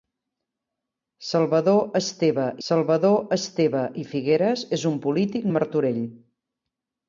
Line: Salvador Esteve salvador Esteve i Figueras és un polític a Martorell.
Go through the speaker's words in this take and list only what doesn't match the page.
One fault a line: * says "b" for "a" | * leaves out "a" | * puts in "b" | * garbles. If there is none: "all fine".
all fine